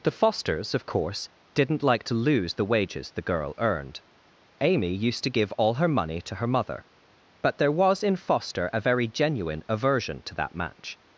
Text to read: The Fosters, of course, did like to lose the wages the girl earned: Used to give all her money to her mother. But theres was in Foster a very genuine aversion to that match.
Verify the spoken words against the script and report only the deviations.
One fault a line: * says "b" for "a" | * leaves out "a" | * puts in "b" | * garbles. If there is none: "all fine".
* says "didn't" for "did"
* puts in "Amy"
* says "there" for "theres"